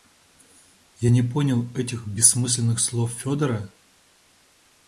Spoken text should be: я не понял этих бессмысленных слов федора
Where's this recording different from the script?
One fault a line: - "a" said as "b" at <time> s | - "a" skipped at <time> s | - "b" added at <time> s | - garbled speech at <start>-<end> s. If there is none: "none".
none